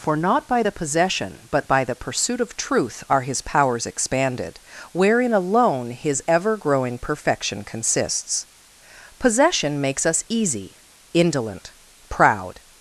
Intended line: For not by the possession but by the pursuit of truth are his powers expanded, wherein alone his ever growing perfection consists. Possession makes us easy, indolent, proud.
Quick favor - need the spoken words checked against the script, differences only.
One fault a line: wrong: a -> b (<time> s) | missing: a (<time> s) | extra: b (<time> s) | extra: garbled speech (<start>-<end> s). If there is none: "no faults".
no faults